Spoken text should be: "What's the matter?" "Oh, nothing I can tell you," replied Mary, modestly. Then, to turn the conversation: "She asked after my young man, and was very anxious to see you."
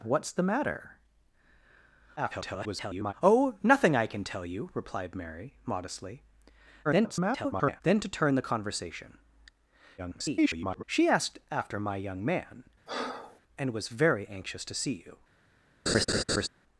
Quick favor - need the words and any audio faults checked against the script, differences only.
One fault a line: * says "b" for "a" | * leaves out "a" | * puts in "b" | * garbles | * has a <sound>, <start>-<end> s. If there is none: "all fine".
* garbles
* garbles
* garbles
* has a breath, 12.9-13.4 s
* has a laugh, 15.9-16.5 s